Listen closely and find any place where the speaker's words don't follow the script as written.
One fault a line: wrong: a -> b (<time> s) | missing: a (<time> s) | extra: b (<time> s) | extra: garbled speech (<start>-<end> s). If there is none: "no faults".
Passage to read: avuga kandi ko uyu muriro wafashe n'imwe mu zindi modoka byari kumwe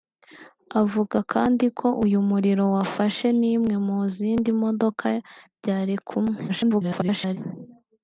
extra: garbled speech (6.5-7.4 s)